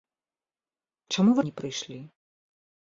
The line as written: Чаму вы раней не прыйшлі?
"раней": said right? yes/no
no